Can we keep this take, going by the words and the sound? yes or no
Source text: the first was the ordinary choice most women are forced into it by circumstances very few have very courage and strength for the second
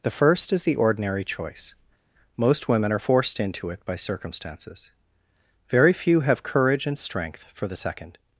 no